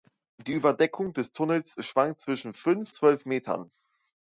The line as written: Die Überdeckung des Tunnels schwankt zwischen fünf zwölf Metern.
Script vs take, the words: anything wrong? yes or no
no